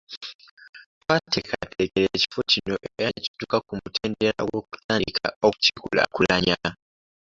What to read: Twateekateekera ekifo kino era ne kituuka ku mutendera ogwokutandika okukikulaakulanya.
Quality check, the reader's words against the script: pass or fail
pass